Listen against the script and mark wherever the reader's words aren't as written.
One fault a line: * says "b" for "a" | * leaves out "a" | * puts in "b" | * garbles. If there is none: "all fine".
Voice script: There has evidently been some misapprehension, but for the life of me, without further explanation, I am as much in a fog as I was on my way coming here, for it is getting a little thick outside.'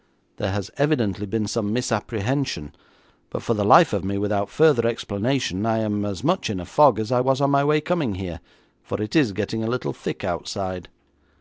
all fine